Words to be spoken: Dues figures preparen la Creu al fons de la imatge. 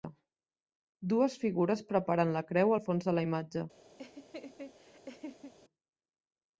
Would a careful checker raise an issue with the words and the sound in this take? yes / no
yes